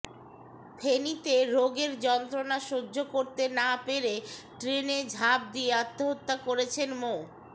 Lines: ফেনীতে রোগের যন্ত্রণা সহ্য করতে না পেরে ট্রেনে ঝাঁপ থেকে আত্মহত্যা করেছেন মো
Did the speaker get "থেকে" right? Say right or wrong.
wrong